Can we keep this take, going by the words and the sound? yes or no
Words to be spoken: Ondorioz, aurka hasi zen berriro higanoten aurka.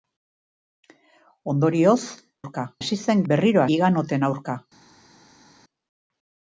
yes